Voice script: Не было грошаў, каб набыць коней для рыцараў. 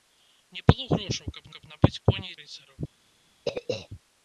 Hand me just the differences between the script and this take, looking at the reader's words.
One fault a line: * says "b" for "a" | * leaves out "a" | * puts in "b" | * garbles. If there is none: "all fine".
* puts in "каб"
* leaves out "для"